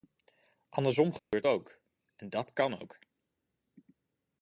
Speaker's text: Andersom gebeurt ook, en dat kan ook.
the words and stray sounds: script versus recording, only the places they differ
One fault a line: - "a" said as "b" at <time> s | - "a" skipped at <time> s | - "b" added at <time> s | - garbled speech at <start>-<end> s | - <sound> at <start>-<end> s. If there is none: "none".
- dropout at 1.2-1.3 s